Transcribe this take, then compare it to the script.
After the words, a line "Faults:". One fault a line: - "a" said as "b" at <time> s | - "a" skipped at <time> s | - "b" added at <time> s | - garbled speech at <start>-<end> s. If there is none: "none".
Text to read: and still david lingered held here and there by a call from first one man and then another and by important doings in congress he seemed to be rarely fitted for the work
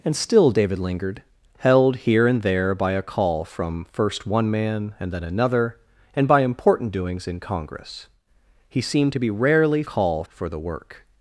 and still david lingered held here and there by a call from first one man and then another and by important doings in congress he seemed to be rarely call for the work
Faults:
- "fitted" said as "call" at 9.8 s